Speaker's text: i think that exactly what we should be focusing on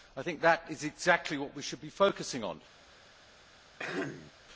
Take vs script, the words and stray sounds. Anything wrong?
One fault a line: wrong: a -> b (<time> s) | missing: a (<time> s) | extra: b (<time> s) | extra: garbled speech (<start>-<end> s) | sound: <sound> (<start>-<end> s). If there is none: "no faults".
extra: is (0.7 s)
sound: throat clearing (3.8-4.3 s)